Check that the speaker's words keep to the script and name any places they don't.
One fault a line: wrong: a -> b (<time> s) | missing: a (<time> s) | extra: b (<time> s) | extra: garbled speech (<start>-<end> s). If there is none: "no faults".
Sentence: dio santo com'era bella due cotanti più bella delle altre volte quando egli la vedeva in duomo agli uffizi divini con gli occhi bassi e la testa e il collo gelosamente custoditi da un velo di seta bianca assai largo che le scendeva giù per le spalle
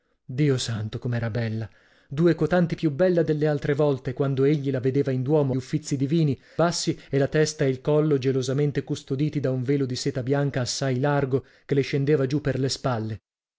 missing: agli (5.6 s)
missing: con gli occhi (6.4 s)